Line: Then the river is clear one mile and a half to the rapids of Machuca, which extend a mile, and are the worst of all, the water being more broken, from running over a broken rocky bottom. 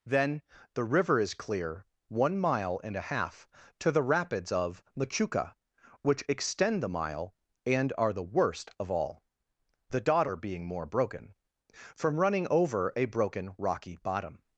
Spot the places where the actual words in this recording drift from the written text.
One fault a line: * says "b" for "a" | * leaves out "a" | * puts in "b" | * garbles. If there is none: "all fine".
* says "the" for "a"
* says "daughter" for "water"